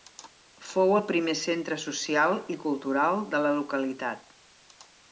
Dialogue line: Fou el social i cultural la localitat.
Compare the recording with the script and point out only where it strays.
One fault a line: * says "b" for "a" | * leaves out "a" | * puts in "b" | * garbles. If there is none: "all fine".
* puts in "primer centre"
* puts in "de"